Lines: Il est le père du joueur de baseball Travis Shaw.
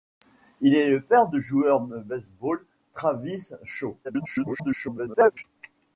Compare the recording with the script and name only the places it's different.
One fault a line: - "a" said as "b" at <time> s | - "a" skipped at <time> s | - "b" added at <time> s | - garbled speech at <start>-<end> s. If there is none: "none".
- garbled speech at 4.0-5.4 s